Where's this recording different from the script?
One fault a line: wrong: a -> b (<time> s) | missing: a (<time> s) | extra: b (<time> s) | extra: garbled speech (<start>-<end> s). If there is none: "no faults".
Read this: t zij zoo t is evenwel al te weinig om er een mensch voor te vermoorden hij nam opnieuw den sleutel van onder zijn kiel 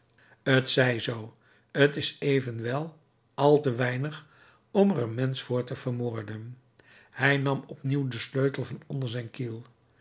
no faults